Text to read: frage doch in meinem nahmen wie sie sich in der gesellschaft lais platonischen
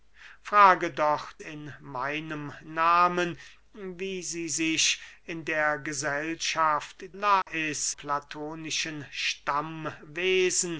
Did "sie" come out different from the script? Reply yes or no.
no